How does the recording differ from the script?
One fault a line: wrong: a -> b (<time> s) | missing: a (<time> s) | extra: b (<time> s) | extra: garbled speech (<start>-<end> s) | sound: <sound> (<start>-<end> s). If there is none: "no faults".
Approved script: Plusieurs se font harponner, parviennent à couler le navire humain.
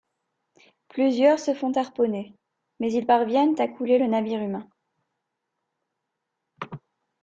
extra: mais ils (2.8 s)